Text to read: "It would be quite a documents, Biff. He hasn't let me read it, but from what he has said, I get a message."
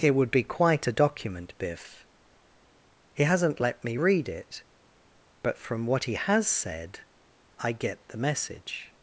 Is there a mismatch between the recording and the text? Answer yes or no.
yes